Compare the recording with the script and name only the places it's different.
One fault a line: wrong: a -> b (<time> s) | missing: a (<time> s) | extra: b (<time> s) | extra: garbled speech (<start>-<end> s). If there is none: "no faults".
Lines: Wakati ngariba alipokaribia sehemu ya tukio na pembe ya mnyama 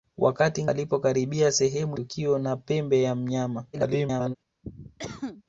missing: ngariba (0.7 s)
missing: ya (2.0 s)
extra: garbled speech (3.7-4.4 s)